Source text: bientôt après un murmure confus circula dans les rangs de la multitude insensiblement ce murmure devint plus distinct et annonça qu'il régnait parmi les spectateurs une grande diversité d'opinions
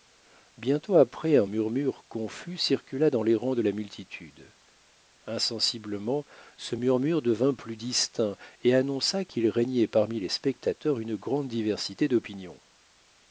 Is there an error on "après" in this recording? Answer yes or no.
no